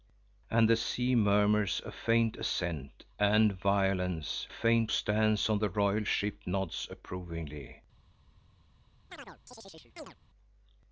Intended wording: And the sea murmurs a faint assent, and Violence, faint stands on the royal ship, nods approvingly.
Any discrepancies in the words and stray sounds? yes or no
yes